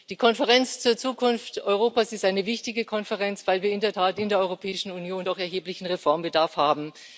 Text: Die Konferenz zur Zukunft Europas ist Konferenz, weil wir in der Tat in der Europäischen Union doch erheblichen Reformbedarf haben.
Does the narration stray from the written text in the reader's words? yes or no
yes